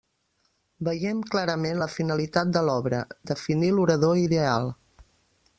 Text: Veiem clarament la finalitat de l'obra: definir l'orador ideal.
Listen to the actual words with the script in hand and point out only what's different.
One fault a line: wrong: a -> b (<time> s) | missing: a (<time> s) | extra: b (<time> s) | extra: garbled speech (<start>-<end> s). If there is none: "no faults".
no faults